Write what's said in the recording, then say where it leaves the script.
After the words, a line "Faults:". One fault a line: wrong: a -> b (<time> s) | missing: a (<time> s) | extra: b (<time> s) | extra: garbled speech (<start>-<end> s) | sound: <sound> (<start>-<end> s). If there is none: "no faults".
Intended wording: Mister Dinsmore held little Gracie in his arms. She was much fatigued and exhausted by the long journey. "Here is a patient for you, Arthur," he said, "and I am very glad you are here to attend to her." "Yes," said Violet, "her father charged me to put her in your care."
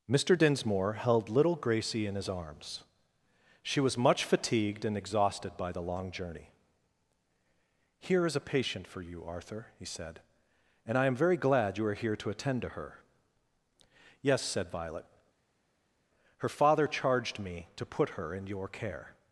Mister Dinsmore held little Gracie in his arms. She was much fatigued and exhausted by the long journey. "Here is a patient for you, Arthur," he said, "and I am very glad you are here to attend to her." "Yes," said Violet, "her father charged me to put her in your care."
Faults:
no faults